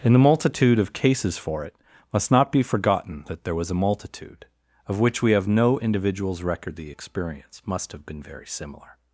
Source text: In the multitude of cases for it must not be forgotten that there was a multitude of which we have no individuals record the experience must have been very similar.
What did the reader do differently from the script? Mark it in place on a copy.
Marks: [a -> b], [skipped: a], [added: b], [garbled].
In the multitude of cases for it must not be forgotten that there was a multitude of which we have no individuals record the experience must have been very similar.